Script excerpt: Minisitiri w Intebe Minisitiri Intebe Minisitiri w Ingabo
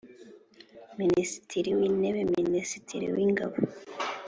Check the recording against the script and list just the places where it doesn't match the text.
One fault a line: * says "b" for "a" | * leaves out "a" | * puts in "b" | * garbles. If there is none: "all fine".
* leaves out "Intebe Minisitiri"